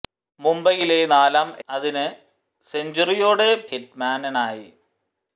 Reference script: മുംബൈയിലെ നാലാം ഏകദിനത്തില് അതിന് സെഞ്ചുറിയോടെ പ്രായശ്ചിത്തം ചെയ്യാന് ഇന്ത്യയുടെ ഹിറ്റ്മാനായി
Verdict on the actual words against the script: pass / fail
fail